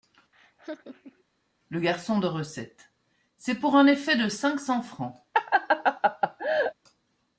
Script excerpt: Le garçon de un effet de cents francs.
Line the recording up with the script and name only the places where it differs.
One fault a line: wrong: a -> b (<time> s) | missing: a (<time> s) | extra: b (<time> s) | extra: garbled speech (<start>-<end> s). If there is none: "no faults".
extra: recette C'est pour (2.3 s)
extra: cinq (4.3 s)